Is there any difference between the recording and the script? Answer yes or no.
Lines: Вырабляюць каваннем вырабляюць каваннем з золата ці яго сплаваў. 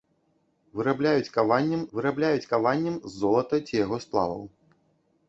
no